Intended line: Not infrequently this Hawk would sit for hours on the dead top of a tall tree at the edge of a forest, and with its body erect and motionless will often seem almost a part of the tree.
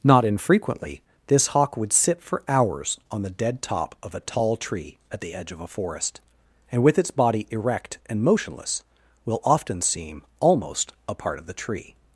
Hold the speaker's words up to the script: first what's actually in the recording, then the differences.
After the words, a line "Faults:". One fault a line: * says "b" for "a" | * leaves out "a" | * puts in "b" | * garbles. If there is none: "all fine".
Not infrequently this Hawk would sit for hours on the dead top of a tall tree at the edge of a forest, and with its body erect and motionless will often seem almost a part of the tree.
Faults:
all fine